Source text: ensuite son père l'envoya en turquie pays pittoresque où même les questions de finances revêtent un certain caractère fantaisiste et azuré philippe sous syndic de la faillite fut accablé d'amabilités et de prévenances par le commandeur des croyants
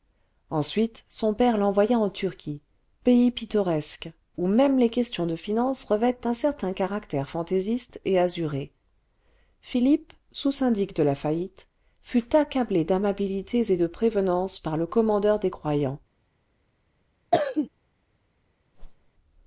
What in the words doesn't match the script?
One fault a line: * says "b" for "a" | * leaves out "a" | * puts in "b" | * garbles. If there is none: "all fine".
all fine